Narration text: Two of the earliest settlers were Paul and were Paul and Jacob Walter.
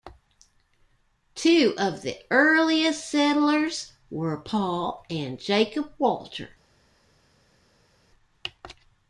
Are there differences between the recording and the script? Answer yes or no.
yes